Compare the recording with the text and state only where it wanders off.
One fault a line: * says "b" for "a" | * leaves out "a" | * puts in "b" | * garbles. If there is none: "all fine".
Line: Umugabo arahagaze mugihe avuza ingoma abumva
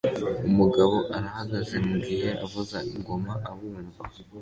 all fine